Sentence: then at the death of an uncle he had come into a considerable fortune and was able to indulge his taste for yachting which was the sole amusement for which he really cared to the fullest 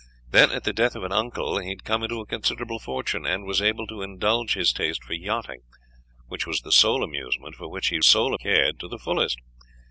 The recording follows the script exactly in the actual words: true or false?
false